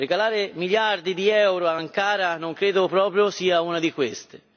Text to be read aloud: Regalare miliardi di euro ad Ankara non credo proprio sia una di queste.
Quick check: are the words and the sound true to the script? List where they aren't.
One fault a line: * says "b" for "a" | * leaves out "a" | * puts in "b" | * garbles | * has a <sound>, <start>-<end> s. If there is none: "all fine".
all fine